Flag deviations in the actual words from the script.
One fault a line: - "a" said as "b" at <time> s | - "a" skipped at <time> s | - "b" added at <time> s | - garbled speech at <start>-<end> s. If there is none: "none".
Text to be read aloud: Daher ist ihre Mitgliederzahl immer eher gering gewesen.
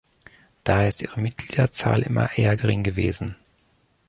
none